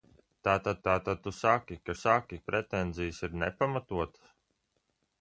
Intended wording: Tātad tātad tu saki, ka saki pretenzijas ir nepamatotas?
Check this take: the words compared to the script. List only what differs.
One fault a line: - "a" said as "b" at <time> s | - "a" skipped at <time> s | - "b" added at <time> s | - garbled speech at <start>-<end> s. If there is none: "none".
none